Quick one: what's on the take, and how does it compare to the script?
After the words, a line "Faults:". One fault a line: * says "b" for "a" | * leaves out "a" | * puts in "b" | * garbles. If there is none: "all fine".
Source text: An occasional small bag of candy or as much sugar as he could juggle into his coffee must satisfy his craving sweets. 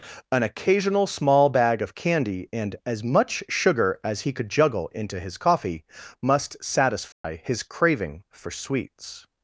An occasional small bag of candy and as much sugar as he could juggle into his coffee must satisfy his craving for sweets.
Faults:
* says "and" for "or"
* puts in "for"